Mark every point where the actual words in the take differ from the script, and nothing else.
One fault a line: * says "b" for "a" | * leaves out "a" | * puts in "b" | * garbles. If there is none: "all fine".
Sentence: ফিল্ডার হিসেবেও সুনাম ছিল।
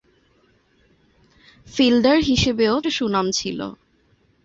all fine